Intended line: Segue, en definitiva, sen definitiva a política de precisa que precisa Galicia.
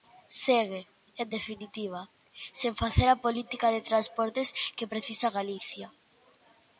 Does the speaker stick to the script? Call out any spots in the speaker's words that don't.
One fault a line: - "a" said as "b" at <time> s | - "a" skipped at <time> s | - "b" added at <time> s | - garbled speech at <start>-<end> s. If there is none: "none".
- "definitiva" said as "facer" at 2.8 s
- "precisa" said as "transportes" at 3.9 s